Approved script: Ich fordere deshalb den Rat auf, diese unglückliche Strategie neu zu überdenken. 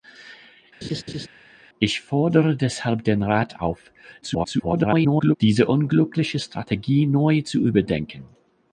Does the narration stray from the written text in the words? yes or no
yes